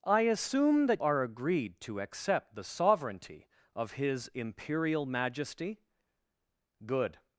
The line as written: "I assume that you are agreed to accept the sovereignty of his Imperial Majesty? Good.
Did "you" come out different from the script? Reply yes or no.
yes